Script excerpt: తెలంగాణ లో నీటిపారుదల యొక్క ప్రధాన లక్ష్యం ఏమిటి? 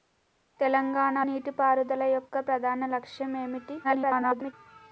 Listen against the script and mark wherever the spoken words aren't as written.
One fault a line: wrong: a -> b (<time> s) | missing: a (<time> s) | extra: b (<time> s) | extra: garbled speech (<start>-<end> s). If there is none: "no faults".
missing: లో (1.2 s)
extra: garbled speech (3.8-4.5 s)